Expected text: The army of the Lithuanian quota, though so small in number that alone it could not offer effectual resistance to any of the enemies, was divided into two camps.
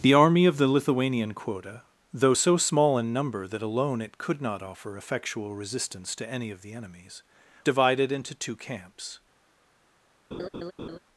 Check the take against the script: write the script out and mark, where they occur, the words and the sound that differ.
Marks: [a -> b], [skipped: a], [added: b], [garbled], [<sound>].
The army of the Lithuanian quota, though so small in number that alone it could not offer effectual resistance to any of the enemies, [skipped: was] divided into two camps. [laugh]